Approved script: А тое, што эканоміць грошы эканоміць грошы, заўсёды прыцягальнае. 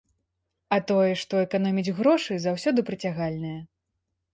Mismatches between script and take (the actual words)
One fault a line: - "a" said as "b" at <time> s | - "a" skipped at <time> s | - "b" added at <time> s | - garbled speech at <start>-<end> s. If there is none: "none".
- "эканоміць грошы" skipped at 2.3 s